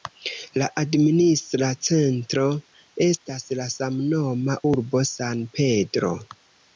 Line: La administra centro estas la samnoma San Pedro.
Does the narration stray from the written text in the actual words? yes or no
yes